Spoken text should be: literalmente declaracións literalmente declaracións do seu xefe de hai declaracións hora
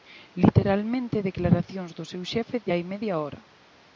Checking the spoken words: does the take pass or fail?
fail